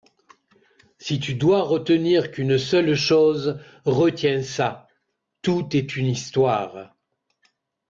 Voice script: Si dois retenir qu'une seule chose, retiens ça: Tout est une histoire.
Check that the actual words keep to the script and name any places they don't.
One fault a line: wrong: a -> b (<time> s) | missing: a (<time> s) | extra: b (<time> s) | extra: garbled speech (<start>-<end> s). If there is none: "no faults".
extra: tu (1.2 s)